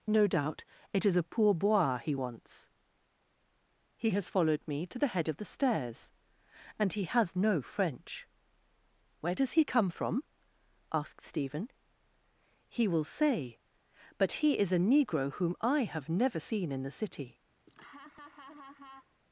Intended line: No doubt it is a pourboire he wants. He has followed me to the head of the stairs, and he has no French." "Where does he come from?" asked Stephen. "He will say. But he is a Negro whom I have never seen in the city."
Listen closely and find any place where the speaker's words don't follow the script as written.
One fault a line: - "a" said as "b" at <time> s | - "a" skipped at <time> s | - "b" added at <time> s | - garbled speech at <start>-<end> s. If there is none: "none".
none